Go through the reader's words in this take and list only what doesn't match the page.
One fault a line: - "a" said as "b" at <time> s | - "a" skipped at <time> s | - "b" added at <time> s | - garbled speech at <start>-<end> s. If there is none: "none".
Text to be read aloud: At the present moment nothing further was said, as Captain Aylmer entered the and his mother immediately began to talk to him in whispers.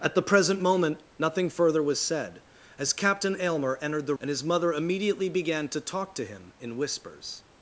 none